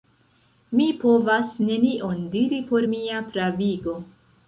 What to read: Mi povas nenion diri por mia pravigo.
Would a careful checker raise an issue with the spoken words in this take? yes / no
no